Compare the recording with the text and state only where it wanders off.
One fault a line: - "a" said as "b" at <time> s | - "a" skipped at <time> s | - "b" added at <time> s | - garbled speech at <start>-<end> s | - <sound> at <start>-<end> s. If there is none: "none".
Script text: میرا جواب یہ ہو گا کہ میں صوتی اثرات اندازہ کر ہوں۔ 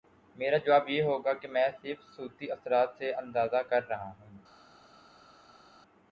- "صرف" added at 1.8 s
- "سے" added at 3.0 s
- "رہا" added at 3.9 s